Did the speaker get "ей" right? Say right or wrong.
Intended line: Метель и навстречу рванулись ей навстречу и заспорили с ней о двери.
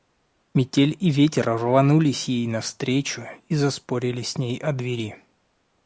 right